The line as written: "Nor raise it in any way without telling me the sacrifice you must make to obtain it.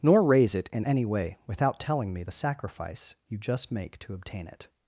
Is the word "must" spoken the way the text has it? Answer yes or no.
no